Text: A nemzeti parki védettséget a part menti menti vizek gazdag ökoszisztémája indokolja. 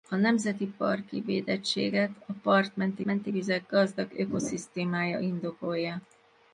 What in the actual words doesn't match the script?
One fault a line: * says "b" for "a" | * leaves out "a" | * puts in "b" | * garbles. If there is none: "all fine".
all fine